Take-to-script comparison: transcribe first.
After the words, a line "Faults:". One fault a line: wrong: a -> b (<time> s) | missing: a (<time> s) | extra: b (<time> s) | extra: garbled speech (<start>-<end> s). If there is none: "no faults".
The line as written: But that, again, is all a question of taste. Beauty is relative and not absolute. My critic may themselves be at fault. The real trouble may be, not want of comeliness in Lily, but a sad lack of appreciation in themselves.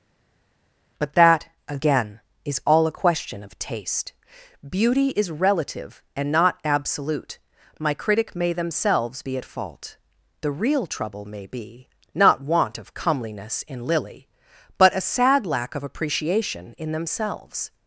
But that, again, is all a question of taste. Beauty is relative and not absolute. My critic may themselves be at fault. The real trouble may be, not want of comeliness in Lily, but a sad lack of appreciation in themselves.
Faults:
no faults